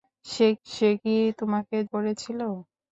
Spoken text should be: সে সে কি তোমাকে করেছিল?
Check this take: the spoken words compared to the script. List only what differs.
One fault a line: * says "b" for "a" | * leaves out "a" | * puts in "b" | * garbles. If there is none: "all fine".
all fine